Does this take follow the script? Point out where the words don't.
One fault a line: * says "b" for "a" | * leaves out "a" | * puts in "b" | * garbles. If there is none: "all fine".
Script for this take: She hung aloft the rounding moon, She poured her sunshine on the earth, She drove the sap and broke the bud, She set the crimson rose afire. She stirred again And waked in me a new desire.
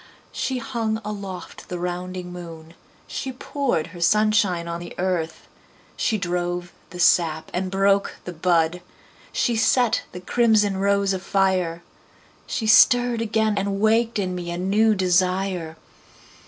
all fine